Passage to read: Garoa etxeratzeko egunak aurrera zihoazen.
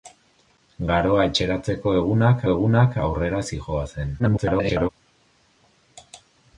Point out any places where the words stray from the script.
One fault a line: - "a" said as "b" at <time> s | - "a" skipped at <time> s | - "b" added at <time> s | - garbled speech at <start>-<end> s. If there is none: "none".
- "egunak" added at 2.5 s
- garbled speech at 4.2-4.9 s